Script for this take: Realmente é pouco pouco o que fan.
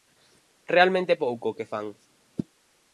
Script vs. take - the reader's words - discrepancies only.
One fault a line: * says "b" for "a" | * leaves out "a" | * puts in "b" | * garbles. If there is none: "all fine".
* leaves out "pouco"